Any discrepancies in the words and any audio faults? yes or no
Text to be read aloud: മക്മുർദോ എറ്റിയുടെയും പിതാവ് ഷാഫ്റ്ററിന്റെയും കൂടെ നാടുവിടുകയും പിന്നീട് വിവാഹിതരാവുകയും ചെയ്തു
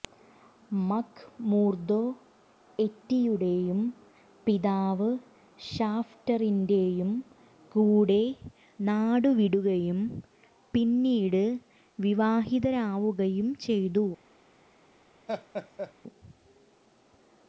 yes